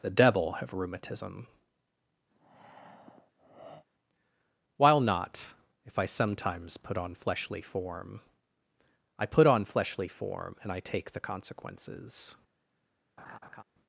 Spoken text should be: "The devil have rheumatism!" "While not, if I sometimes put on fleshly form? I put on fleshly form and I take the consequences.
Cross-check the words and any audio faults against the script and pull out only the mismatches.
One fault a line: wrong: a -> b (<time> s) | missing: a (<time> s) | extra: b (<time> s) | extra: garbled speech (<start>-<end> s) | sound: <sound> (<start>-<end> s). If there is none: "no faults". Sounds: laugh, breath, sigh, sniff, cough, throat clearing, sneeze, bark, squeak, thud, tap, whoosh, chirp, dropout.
sound: breath (2.3-3.9 s)
sound: laugh (13.2-13.6 s)